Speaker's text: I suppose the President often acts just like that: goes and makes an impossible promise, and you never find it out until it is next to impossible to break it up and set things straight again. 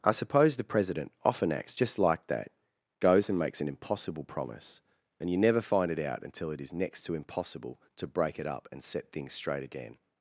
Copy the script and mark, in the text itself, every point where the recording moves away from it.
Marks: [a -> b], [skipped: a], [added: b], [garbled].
I suppose the President often acts just like that: goes and makes an impossible promise, and you never find it out until it is next to impossible to break it up and set things straight again.